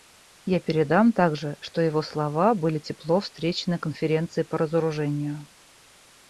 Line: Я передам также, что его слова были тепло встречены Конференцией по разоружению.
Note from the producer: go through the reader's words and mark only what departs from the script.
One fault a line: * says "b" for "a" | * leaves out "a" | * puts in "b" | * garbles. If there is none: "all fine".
all fine